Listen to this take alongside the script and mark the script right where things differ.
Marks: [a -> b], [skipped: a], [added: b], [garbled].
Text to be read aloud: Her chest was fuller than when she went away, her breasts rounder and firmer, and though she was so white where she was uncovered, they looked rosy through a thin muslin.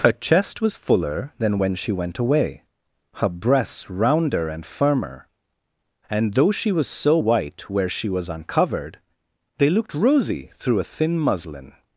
Her chest was fuller than when she went away, her breasts rounder and firmer, and though she was so white where she was uncovered, they looked rosy through a thin muslin.